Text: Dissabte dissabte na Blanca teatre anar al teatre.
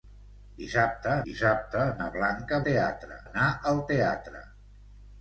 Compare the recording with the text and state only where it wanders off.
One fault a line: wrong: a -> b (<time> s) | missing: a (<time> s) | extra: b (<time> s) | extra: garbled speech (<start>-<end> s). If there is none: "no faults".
no faults